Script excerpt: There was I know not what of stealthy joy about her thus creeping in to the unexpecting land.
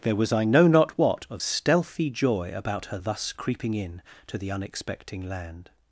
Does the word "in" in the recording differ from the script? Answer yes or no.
no